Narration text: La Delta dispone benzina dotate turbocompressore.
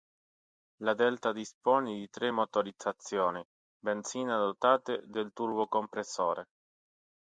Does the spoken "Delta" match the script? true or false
true